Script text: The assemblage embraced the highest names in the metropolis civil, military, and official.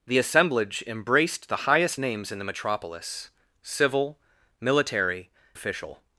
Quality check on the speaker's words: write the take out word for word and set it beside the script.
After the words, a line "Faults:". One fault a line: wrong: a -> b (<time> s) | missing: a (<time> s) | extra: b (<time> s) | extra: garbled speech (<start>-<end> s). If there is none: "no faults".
The assemblage embraced the highest names in the metropolis civil, military, official.
Faults:
missing: and (5.3 s)